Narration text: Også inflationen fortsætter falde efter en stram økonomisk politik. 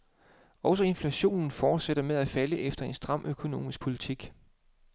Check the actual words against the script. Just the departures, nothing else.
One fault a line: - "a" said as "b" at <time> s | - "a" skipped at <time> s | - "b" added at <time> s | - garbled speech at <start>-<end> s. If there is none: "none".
- "med at" added at 2.0 s